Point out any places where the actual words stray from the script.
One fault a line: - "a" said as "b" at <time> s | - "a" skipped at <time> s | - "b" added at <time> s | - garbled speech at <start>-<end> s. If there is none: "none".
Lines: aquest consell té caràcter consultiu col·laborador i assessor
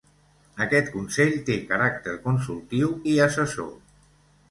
- "col·laborador" skipped at 2.9 s